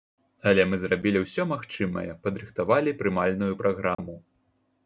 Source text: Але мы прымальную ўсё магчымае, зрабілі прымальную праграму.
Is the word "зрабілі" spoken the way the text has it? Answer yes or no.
no